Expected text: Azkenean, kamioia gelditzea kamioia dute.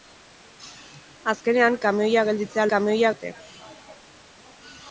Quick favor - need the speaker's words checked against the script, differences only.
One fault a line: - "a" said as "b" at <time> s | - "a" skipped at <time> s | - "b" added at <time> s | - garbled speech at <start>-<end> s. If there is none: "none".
none